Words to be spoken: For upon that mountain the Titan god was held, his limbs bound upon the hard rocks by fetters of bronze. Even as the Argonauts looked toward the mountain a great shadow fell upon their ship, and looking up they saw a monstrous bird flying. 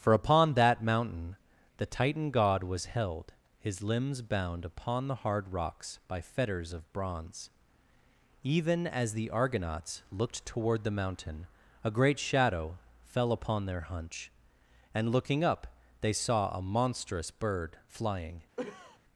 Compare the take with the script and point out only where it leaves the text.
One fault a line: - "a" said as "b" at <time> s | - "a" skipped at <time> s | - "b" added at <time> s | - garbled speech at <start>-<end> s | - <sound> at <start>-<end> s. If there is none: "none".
- "ship" said as "hunch" at 13.8 s
- cough at 18.6-19.0 s